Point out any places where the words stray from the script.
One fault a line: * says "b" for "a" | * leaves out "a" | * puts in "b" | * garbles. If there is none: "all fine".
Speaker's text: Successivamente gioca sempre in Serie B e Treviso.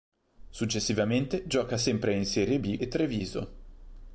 all fine